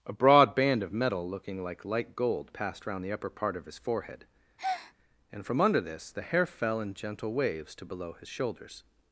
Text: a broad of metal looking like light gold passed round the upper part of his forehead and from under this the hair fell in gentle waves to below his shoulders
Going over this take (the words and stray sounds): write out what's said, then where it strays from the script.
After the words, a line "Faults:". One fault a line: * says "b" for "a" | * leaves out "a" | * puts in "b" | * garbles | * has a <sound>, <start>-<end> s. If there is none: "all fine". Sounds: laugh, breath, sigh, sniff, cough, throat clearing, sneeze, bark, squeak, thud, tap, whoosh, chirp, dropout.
a broad band of metal looking like light gold passed round the upper part of his forehead and from under this the hair fell in gentle waves to below his shoulders
Faults:
* puts in "band"
* has a breath, 4.6-4.9 s